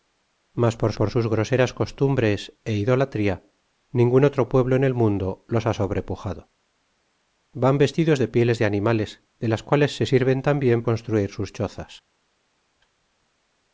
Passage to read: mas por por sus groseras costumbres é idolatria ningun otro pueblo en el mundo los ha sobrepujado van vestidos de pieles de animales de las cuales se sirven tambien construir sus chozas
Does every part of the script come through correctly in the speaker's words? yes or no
yes